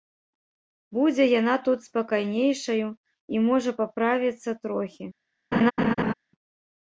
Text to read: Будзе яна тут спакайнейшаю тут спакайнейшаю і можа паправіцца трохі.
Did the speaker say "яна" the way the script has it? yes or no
yes